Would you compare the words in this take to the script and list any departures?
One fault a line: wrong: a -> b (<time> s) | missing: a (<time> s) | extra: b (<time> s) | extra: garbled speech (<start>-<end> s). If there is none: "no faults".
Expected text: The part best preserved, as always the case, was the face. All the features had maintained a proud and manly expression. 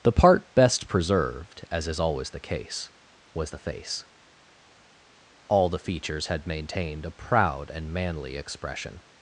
extra: is (1.9 s)